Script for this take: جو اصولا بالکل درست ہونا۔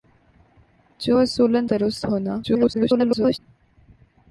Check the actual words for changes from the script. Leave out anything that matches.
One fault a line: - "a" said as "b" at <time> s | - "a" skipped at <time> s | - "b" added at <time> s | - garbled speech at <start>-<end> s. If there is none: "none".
- "بالکل" skipped at 1.6 s
- garbled speech at 2.4-3.4 s